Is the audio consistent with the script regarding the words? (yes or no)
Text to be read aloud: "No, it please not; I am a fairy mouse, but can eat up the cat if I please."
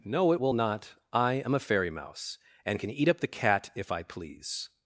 no